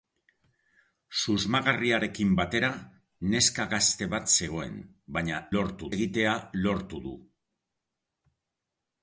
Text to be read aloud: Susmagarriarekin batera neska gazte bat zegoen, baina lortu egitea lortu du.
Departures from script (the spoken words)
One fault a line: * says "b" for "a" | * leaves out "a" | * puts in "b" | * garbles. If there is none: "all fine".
all fine